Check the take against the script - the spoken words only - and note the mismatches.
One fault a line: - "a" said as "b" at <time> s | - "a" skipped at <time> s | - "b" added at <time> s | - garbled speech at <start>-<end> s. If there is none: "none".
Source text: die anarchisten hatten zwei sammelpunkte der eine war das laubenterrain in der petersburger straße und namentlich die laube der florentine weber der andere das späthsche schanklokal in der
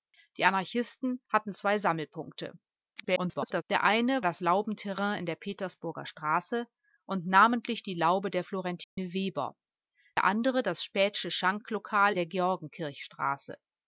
- garbled speech at 3.0-3.6 s
- "war" skipped at 4.2 s
- "in" skipped at 12.1 s